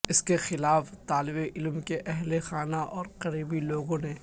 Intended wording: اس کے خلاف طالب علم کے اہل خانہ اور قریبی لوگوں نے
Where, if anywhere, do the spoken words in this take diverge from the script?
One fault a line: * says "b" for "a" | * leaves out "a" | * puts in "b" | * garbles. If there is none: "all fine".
all fine